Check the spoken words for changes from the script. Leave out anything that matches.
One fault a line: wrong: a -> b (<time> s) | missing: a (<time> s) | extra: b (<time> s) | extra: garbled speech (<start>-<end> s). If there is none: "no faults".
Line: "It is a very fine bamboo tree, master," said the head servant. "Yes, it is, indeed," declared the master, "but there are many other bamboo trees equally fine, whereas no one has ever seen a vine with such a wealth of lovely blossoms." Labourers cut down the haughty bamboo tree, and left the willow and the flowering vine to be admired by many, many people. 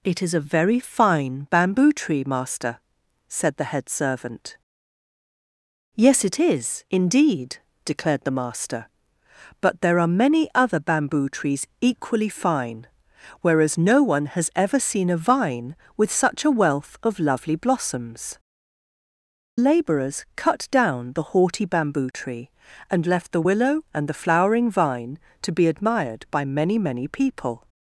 no faults